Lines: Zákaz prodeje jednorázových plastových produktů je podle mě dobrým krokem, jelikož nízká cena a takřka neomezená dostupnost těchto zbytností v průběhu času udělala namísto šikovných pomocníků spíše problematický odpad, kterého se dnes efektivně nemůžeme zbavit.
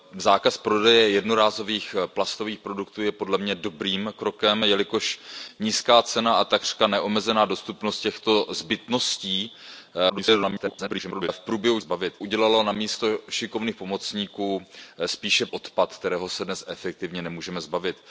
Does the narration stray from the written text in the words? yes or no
yes